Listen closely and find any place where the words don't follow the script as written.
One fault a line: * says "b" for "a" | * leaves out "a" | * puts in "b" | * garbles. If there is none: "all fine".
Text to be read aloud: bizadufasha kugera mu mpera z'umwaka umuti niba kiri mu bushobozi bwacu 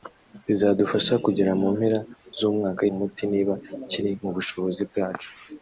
all fine